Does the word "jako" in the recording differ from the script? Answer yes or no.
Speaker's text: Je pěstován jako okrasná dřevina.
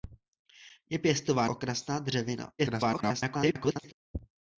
yes